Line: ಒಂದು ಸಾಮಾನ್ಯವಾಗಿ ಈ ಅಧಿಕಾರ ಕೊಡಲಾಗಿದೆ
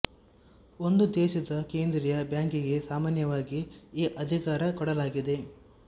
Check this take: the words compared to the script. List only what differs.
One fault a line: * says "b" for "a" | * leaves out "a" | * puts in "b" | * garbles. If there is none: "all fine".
* puts in "ದೇಶದ ಕೇಂದ್ರೀಯ ಬ್ಯಾಂಕಿಗೆ"